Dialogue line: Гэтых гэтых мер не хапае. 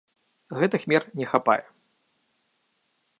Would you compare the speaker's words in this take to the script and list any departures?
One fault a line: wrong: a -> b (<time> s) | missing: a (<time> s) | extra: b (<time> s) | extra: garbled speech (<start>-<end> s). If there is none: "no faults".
missing: гэтых (0.8 s)